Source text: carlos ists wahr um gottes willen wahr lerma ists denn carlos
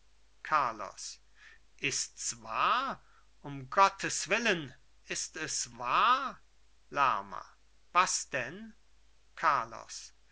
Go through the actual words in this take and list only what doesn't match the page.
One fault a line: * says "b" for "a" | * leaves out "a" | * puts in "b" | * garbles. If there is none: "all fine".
* puts in "ist es"
* says "was" for "ists"